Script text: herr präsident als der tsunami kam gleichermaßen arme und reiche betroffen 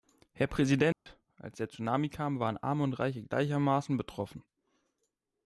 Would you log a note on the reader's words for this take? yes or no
yes